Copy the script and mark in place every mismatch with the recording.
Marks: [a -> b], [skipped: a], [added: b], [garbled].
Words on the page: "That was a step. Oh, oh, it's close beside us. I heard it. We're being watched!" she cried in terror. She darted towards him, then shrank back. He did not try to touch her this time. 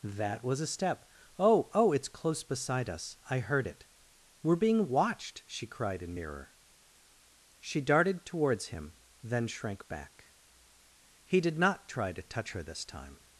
"That was a step. Oh, oh, it's close beside us. I heard it. We're being watched!" she cried in [terror. -> mirror] She darted towards him, then shrank back. He did not try to touch her this time.